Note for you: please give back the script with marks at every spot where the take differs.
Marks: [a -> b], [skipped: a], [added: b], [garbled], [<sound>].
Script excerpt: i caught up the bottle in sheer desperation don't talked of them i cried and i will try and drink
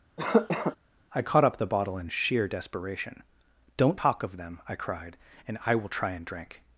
[cough] i caught up the bottle in sheer desperation don't [talked -> talk] of them i cried and i will try and drink